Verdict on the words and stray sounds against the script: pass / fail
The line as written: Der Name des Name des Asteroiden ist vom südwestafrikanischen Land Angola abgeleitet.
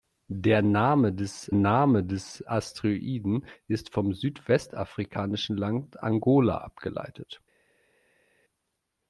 pass